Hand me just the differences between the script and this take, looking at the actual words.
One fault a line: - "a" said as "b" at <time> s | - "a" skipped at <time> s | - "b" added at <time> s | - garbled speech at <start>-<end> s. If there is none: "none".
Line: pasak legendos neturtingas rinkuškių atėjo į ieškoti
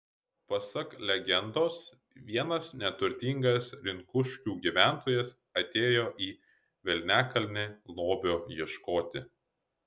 - "vienas" added at 2.3 s
- "gyventojas" added at 4.7 s
- "velniakalnį lobio" added at 6.9 s